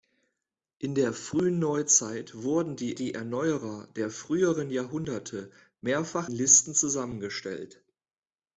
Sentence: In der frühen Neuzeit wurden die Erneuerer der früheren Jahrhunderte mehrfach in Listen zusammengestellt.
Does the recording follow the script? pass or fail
fail